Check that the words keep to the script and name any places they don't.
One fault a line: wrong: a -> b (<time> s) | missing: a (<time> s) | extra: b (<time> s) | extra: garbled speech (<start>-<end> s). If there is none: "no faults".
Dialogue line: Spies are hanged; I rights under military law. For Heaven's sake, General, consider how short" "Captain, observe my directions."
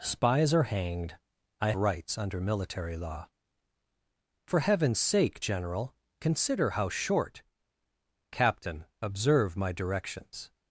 no faults